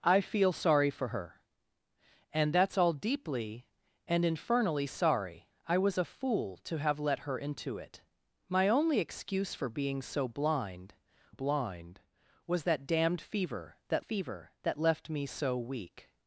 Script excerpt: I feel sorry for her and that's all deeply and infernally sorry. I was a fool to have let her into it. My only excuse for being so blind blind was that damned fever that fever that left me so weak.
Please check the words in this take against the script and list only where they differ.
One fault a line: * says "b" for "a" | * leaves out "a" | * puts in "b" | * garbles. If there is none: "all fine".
all fine